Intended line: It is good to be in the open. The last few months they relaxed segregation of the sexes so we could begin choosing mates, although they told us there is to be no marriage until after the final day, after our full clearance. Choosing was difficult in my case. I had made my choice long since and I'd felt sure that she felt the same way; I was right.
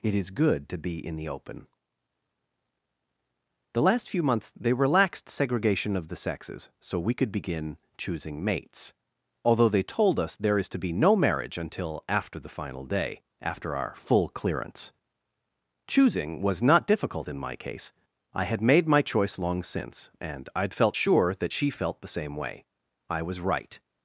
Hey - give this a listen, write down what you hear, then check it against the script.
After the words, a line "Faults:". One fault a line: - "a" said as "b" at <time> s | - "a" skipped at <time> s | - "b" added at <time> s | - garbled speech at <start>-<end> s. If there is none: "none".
It is good to be in the open. The last few months they relaxed segregation of the sexes so we could begin choosing mates, although they told us there is to be no marriage until after the final day, after our full clearance. Choosing was not difficult in my case. I had made my choice long since and I'd felt sure that she felt the same way; I was right.
Faults:
- "not" added at 16.6 s